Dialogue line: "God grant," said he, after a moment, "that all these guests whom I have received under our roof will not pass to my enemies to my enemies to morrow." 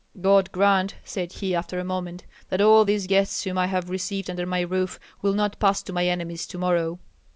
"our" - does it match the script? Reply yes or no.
no